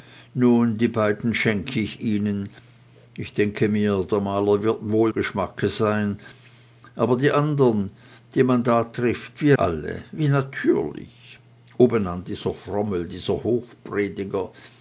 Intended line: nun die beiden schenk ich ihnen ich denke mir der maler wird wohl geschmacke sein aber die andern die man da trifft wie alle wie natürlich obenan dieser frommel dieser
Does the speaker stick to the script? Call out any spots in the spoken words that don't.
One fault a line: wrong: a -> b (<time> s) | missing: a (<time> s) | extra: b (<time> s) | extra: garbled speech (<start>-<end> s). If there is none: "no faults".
no faults